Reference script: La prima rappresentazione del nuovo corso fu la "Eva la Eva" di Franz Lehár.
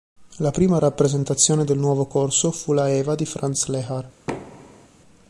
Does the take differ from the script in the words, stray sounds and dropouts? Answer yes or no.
yes